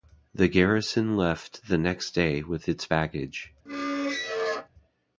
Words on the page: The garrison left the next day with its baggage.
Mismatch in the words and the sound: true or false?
true